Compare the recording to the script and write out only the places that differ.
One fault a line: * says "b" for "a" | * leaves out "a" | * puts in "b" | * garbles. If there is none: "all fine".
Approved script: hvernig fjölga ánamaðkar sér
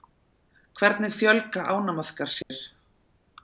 all fine